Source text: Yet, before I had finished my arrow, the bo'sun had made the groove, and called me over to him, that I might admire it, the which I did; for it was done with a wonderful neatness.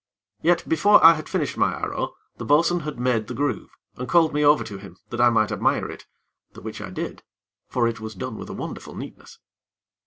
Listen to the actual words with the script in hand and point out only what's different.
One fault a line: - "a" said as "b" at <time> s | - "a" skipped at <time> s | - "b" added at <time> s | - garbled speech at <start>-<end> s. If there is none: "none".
none